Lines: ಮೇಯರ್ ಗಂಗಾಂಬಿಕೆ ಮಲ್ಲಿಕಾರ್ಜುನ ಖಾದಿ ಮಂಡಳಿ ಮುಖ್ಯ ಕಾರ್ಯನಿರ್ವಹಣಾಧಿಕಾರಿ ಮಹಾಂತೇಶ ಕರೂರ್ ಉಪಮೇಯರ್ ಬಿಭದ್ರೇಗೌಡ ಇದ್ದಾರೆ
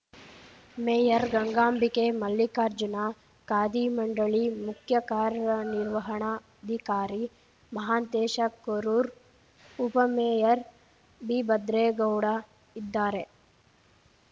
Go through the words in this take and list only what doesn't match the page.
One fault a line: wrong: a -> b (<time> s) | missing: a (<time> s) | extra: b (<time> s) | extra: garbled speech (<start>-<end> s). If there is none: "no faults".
no faults